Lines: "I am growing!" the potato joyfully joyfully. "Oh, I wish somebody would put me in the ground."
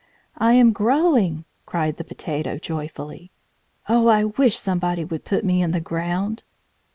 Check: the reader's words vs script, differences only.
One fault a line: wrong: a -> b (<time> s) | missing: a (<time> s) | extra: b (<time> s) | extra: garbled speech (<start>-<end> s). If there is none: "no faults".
extra: cried (1.7 s)
missing: joyfully (3.3 s)